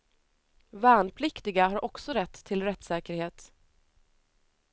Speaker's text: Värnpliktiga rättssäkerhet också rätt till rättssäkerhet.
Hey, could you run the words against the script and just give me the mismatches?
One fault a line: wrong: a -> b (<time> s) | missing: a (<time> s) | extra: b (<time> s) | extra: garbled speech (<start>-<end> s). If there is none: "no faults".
wrong: rättssäkerhet -> har (1.7 s)